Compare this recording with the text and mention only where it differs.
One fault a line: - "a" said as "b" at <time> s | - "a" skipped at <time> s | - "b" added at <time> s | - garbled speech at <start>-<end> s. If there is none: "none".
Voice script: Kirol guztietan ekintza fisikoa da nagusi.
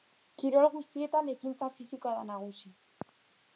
none